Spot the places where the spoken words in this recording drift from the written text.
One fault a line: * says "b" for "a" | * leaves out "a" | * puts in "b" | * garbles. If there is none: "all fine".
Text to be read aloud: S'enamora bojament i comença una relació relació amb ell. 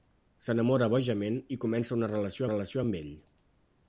all fine